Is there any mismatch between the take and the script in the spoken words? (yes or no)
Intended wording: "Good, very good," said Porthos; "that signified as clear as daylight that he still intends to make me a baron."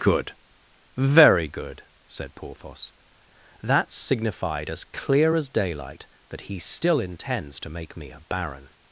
no